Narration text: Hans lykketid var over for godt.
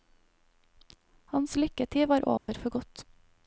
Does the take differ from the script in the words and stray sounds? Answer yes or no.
yes